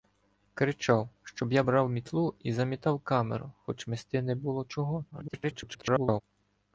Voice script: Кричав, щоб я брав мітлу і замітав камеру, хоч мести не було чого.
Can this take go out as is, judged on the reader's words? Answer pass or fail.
fail